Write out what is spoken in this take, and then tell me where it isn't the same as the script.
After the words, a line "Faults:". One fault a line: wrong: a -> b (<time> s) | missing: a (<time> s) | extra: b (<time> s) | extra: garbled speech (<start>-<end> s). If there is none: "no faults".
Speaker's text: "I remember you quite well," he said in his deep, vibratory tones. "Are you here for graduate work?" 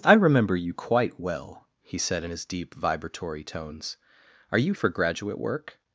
"I remember you quite well," he said in his deep, vibratory tones. "Are you for graduate work?"
Faults:
missing: here (4.7 s)